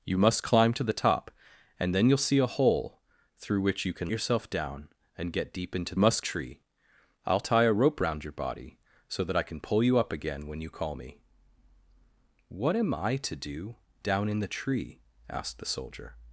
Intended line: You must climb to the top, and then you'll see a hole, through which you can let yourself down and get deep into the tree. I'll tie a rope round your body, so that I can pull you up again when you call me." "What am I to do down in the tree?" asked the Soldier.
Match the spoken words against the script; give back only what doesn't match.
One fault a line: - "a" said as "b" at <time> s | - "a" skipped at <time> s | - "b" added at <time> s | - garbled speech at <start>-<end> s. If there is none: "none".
- "let" skipped at 4.1 s
- "the" said as "must" at 6.0 s